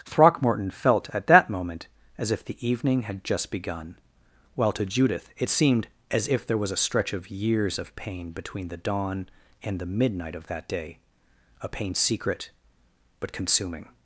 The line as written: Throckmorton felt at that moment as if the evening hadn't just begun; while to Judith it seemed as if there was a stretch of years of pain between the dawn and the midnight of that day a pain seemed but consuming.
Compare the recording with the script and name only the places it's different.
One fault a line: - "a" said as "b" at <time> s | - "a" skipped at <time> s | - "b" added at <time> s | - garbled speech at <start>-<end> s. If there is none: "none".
- "hadn't" said as "had" at 3.0 s
- "seemed" said as "secret" at 11.9 s